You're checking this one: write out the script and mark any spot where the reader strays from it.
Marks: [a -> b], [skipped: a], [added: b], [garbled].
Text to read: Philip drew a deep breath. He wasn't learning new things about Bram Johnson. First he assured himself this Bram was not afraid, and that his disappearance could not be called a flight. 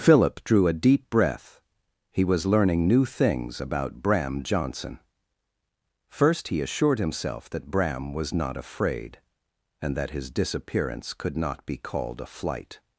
Philip drew a deep breath. He [wasn't -> was] learning new things about Bram Johnson. First he assured himself [this -> that] Bram was not afraid, and that his disappearance could not be called a flight.